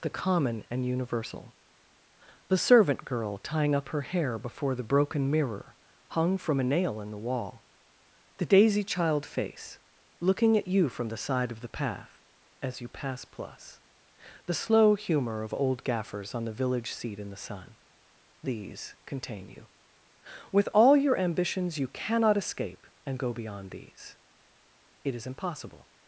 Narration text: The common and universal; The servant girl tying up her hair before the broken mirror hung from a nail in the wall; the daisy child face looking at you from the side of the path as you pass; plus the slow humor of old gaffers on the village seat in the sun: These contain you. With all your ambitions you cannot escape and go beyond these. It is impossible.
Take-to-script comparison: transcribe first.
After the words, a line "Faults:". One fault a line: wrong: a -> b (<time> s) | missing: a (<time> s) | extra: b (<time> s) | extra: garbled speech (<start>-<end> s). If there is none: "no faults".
The common and universal; The servant girl tying up her hair before the broken mirror hung from a nail in the wall; the daisy child face looking at you from the side of the path as you pass; plus the slow humor of old gaffers on the village seat in the sun: These contain you. With all your ambitions you cannot escape and go beyond these. It is impossible.
Faults:
no faults